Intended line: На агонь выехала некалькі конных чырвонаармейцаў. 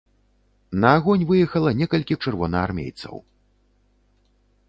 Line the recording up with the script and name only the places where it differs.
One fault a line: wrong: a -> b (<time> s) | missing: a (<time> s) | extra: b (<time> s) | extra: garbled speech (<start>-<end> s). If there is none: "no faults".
missing: конных (2.1 s)